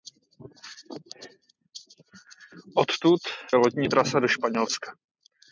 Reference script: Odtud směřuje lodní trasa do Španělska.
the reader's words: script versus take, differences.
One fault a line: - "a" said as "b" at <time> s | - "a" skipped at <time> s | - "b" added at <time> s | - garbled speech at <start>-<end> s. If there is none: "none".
- "směřuje" skipped at 3.2 s